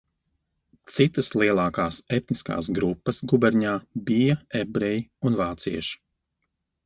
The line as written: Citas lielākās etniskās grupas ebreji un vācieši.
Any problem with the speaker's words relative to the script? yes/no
yes